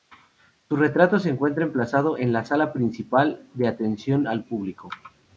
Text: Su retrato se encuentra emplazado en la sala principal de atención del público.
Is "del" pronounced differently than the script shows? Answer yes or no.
yes